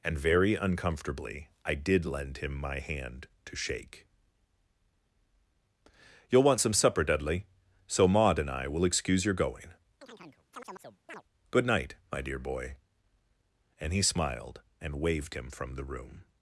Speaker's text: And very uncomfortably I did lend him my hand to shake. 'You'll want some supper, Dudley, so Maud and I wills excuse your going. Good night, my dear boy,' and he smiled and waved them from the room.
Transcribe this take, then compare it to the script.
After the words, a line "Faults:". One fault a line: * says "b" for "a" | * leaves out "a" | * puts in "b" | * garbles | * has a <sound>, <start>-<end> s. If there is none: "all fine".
And very uncomfortably I did lend him my hand to shake. 'You'll want some supper, Dudley, so Maud and I will excuse your going. Good night, my dear boy,' and he smiled and waved him from the room.
Faults:
* says "will" for "wills"
* has a chirp, 10.0-11.2 s
* says "him" for "them"